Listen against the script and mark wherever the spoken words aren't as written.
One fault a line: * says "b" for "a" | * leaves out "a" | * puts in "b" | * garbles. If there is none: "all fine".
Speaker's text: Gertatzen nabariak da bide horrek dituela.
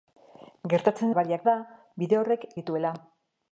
all fine